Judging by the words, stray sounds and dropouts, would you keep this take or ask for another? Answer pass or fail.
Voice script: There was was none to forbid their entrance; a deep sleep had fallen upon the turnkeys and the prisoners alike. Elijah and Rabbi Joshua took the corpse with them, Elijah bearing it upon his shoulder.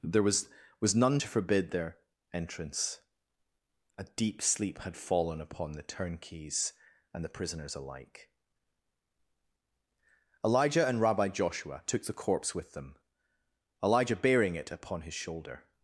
pass